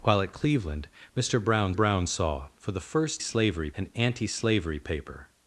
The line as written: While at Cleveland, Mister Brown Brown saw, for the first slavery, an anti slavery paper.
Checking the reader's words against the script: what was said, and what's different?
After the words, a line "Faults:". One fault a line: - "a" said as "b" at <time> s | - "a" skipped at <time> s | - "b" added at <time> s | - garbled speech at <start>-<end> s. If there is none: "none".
While at Cleveland, Mister Brown Brown saw, for the first slavery, an anti slavery paper.
Faults:
none